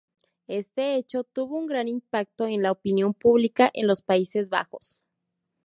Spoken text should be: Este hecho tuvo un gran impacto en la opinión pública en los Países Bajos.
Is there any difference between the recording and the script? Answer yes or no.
no